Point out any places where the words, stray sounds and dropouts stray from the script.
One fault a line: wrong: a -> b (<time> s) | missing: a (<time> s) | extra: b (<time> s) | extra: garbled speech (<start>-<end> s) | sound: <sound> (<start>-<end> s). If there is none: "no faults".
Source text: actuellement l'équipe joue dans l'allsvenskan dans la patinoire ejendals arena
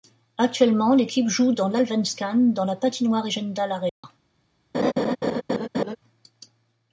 sound: dropout (3.9-4.0 s)
sound: laugh (4.7-6.0 s)